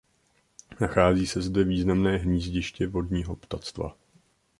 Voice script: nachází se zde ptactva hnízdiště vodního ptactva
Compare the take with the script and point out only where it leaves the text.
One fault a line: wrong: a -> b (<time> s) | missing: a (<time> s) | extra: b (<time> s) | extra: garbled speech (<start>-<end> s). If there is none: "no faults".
wrong: ptactva -> významné (1.6 s)